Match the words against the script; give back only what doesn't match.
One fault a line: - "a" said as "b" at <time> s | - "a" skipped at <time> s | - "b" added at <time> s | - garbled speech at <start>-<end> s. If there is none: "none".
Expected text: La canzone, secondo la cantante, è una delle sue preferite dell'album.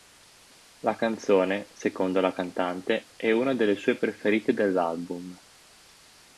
none